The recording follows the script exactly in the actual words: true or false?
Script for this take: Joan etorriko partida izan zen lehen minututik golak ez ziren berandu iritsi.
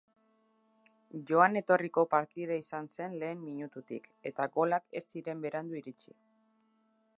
false